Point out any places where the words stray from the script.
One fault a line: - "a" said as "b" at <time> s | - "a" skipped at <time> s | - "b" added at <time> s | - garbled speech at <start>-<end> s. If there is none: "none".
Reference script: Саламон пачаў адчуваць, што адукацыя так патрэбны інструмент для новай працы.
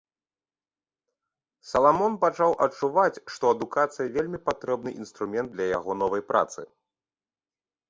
- "так" said as "вельмі" at 4.2 s
- "яго" added at 5.8 s